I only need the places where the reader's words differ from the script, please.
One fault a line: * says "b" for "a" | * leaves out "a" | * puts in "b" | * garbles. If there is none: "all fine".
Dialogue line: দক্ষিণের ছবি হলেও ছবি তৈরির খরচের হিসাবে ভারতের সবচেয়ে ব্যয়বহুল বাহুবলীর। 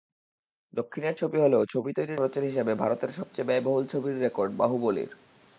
* puts in "ছবির রেকর্ড"